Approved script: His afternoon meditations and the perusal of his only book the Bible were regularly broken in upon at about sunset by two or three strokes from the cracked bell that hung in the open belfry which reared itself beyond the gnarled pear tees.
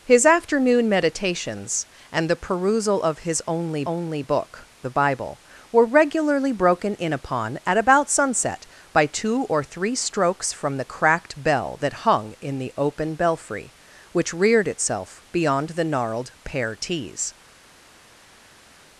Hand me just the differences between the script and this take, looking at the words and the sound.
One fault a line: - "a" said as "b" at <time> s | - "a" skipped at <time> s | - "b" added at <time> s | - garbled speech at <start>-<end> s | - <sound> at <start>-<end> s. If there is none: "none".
- "only" added at 3.9 s